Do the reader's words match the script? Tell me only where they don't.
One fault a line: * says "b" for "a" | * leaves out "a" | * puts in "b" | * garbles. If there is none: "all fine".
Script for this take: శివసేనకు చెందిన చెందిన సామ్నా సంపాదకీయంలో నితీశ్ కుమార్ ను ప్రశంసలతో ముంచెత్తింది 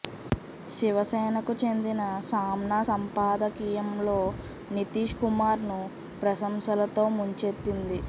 * leaves out "చెందిన"